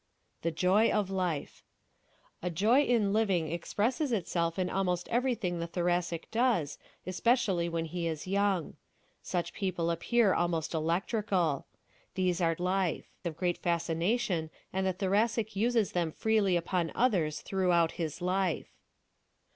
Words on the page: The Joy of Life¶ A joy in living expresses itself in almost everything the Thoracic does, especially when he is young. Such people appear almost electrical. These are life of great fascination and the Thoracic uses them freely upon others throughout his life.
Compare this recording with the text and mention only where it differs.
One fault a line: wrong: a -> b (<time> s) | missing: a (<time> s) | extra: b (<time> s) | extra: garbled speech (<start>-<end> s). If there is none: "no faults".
no faults